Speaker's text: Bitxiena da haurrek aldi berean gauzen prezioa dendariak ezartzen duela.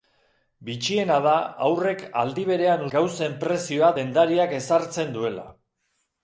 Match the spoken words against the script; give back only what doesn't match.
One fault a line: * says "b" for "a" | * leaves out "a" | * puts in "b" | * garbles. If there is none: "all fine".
all fine